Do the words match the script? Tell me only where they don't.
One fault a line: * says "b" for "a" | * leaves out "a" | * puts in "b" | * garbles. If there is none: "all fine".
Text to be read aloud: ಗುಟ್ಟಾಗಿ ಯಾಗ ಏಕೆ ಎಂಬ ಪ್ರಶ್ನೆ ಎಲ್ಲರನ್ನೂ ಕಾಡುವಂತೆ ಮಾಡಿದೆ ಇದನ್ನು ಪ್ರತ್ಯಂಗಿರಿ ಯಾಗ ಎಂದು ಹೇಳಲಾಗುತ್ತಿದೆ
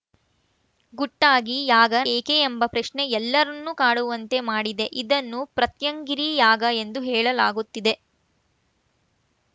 all fine